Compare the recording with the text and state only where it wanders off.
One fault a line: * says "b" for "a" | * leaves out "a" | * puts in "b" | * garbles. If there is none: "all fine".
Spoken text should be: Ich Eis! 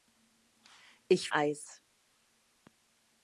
all fine